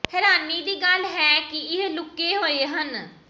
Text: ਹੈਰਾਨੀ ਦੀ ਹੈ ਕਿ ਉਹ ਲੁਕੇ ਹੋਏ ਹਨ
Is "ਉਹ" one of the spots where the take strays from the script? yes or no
yes